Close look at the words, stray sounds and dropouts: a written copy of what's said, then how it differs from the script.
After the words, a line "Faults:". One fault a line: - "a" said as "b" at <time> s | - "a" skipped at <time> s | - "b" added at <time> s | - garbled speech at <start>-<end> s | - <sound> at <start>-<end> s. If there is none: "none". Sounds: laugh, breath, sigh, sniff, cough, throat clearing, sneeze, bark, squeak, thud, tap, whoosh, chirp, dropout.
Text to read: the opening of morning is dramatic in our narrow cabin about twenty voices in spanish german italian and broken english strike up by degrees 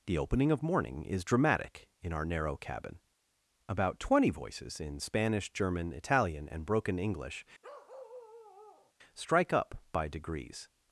the opening of morning is dramatic in our narrow cabin about twenty voices in spanish german italian and broken english strike up by degrees
Faults:
- bark at 7.6-8.9 s